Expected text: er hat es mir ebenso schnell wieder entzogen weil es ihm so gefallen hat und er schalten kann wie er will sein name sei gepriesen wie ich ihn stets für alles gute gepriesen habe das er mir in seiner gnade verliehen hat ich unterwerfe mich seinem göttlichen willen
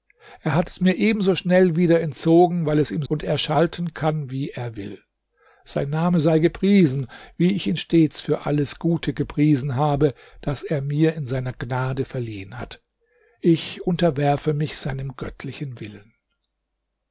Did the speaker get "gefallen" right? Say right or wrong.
wrong